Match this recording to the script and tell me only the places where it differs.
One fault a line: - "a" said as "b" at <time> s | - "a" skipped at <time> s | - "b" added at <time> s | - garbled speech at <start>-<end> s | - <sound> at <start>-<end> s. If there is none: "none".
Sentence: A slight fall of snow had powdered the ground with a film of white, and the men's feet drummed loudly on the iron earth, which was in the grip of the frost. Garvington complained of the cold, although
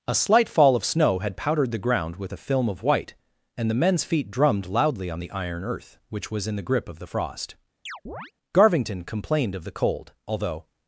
- chirp at 7.9-8.3 s